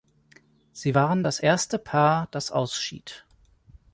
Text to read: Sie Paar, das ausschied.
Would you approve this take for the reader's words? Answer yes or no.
no